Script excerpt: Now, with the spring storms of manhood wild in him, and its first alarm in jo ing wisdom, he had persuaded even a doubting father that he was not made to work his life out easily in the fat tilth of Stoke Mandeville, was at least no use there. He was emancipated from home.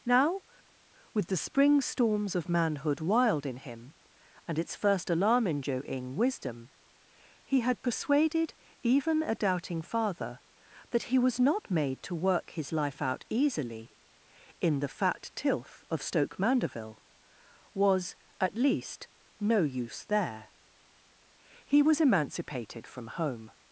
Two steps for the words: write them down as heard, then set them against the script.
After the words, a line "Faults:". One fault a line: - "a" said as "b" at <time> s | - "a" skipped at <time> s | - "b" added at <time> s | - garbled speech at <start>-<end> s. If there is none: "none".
Now, with the spring storms of manhood wild in him, and its first alarm in jo ing wisdom, he had persuaded even a doubting father that he was not made to work his life out easily in the fat tilth of Stoke Mandeville, was at least no use there. He was emancipated from home.
Faults:
none